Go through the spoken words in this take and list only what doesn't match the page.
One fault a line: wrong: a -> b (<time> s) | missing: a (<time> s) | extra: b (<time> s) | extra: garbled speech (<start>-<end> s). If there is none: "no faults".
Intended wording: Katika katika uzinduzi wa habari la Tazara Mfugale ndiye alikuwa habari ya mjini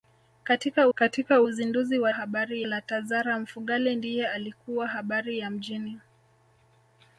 no faults